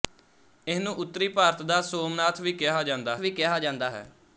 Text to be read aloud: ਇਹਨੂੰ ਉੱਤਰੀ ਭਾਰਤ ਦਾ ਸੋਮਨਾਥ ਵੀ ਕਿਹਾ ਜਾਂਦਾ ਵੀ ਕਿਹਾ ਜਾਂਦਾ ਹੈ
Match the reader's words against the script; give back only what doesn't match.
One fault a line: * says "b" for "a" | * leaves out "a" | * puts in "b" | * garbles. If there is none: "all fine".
all fine